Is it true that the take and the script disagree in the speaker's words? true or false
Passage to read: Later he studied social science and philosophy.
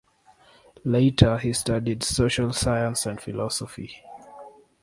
false